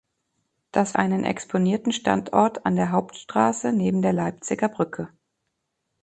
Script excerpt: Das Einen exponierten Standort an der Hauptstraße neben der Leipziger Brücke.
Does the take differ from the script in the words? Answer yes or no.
no